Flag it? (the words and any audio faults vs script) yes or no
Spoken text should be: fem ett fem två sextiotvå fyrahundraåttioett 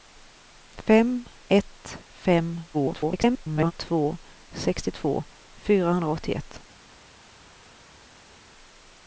yes